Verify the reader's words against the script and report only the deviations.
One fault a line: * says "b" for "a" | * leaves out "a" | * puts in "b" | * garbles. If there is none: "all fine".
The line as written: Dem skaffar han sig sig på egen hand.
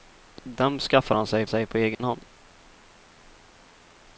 all fine